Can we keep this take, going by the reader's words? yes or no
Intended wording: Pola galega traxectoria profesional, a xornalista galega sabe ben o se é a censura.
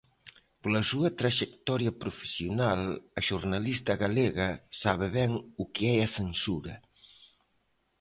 no